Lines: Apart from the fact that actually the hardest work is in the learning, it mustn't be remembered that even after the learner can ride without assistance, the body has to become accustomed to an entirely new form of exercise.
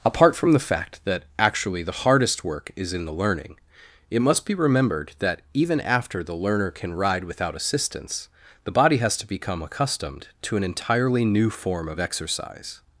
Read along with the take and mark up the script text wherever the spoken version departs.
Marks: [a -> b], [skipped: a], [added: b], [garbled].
Apart from the fact that actually the hardest work is in the learning, it [mustn't -> must] be remembered that even after the learner can ride without assistance, the body has to become accustomed to an entirely new form of exercise.